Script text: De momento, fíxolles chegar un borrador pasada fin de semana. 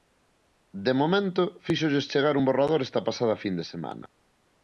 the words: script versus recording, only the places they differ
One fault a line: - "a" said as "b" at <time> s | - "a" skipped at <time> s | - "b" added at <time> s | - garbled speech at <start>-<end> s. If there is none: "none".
- "esta" added at 2.9 s